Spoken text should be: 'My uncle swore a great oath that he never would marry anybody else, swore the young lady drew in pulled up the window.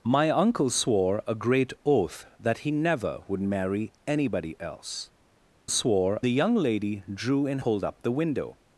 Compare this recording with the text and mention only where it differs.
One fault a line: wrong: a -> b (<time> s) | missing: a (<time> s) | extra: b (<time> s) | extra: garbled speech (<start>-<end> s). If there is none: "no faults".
no faults